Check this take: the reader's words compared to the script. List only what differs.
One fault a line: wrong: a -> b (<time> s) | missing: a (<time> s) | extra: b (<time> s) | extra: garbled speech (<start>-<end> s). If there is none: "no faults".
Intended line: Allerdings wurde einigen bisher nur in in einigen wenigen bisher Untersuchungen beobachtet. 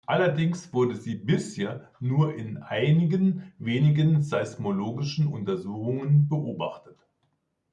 wrong: einigen -> sie (0.9 s)
missing: in (2.6 s)
wrong: bisher -> seismologischen (4.2 s)